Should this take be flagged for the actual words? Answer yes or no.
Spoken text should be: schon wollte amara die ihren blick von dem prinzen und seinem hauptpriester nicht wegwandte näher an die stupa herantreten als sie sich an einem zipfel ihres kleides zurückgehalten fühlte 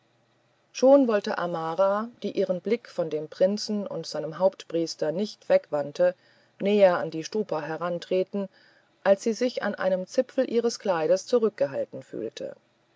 no